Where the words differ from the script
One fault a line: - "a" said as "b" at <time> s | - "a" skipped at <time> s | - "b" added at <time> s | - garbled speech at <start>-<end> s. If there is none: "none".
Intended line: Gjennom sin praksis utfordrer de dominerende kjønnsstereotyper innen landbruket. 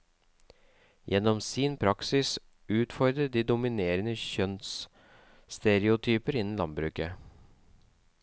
none